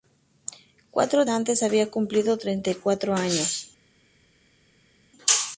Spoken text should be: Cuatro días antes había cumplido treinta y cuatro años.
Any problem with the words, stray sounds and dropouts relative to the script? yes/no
yes